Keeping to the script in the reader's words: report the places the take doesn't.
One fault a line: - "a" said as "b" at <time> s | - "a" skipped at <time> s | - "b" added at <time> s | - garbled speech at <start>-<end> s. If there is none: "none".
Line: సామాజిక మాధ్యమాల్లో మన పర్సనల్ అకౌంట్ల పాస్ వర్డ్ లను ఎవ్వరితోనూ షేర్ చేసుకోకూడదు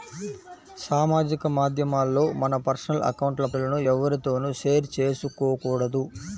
- "పాస్ వర్డ్" skipped at 3.5 s